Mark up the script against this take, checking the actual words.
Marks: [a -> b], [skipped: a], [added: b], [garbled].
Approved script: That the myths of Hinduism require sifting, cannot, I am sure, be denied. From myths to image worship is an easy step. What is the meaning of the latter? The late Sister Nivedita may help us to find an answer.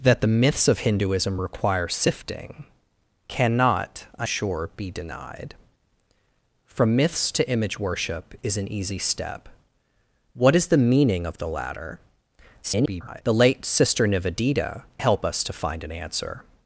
That the myths of Hinduism require sifting, cannot, I [skipped: am] sure, be denied. From myths to image worship is an easy step. What is the meaning of the latter? [garbled] The late Sister Nivedita [skipped: may] help us to find an answer.